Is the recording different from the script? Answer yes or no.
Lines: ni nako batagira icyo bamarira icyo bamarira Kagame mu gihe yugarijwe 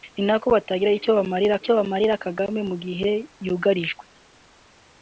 no